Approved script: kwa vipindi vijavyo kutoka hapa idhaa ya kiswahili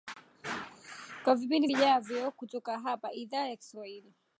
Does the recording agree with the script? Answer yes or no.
yes